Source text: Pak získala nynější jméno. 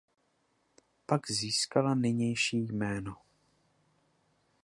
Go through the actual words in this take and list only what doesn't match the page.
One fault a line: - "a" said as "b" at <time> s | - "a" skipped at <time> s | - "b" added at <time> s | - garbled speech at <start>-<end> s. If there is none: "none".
none